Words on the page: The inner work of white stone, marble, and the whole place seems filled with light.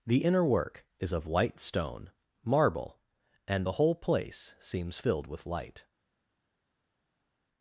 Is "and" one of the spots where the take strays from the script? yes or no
no